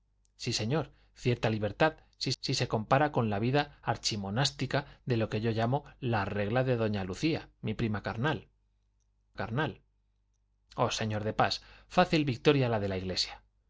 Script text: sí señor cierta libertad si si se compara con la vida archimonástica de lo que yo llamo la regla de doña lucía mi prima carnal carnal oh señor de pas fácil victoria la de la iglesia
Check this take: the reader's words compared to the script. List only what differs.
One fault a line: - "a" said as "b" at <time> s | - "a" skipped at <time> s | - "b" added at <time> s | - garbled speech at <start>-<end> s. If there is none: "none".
none